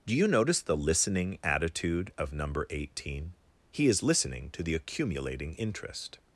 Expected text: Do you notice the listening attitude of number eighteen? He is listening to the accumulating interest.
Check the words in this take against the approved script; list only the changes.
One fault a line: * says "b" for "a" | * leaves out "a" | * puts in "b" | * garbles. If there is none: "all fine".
all fine